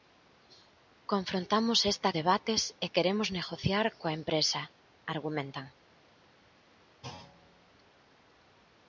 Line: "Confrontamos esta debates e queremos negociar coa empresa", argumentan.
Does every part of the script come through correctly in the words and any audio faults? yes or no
no